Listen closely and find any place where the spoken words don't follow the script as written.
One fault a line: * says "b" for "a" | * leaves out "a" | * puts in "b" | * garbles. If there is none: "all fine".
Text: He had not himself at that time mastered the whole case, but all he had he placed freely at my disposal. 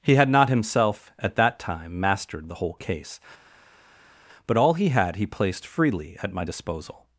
all fine